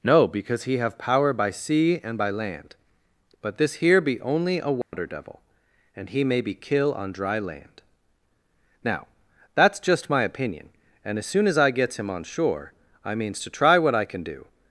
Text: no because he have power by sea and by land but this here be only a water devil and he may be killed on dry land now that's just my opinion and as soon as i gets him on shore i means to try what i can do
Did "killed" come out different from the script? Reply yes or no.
yes